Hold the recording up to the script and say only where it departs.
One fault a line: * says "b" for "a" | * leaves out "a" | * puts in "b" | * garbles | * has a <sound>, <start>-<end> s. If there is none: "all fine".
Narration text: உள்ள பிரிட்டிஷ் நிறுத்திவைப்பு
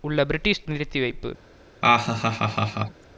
* has a laugh, 1.8-3.0 s